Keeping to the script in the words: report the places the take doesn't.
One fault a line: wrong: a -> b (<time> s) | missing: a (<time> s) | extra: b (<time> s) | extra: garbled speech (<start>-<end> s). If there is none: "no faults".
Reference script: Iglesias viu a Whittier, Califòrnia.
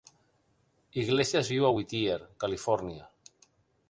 no faults